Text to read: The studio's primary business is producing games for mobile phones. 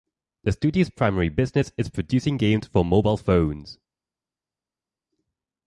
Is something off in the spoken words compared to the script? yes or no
no